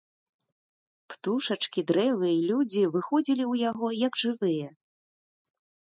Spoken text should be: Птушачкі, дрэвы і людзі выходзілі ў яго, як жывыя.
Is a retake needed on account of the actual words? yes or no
no